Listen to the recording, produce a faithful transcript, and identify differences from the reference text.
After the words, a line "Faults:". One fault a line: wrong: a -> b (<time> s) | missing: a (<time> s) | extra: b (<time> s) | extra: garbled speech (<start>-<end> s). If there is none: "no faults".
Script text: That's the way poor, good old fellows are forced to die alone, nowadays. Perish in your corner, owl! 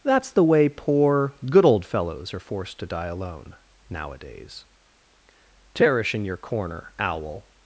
That's the way poor, good old fellows are forced to die alone, nowadays. Perish in your corner, owl!
Faults:
no faults